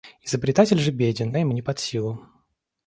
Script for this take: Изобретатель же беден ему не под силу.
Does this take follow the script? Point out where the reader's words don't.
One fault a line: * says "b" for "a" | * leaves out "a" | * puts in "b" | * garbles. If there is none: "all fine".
all fine